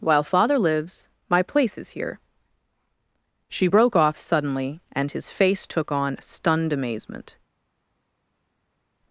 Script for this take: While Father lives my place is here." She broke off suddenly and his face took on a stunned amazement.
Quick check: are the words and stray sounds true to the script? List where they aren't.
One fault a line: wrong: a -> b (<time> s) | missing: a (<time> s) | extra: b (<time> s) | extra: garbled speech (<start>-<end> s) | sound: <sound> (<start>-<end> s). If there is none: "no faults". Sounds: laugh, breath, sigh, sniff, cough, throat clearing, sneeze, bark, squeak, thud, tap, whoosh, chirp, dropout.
missing: a (6.2 s)